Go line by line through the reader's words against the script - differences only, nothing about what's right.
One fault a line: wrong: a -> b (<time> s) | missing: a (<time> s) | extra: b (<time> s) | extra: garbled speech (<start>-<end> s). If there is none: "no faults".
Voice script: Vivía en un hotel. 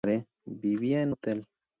missing: un (1.1 s)